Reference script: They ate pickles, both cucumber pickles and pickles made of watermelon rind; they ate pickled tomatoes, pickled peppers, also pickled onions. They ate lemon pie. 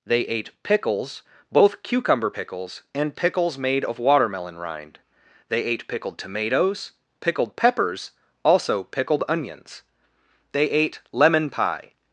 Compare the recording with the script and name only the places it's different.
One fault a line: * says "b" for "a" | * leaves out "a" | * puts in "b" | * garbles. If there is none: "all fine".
all fine